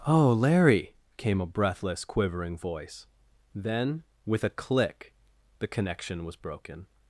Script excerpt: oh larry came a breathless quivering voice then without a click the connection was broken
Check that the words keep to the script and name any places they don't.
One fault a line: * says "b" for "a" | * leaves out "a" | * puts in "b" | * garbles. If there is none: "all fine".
* says "with" for "without"